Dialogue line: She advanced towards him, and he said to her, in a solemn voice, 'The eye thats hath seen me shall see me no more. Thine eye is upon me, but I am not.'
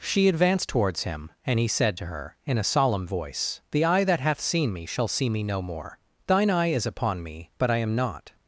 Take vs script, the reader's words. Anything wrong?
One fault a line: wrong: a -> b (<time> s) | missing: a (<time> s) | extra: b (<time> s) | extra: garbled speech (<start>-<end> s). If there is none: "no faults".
wrong: thats -> that (4.0 s)